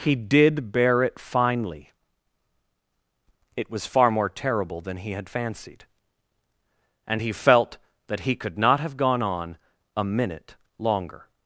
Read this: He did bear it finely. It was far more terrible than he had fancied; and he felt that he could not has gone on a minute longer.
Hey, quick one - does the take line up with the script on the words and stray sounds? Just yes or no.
no